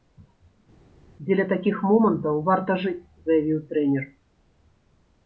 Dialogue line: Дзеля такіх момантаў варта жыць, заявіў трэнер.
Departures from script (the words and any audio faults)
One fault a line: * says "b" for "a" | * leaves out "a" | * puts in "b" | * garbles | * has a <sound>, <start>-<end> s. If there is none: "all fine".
all fine